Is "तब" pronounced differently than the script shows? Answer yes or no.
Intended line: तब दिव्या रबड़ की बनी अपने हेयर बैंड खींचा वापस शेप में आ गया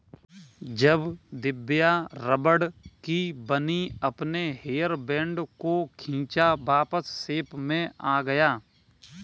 yes